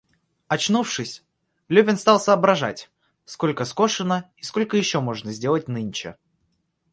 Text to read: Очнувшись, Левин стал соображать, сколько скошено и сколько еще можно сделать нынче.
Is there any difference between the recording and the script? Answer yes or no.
no